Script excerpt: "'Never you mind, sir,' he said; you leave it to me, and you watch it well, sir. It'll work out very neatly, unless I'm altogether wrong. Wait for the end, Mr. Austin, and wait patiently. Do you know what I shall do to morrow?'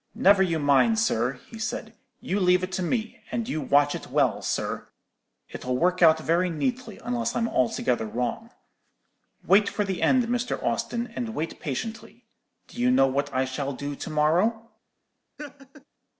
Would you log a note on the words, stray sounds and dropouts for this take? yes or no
yes